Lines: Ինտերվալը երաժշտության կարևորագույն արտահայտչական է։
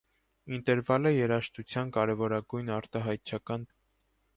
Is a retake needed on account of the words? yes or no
no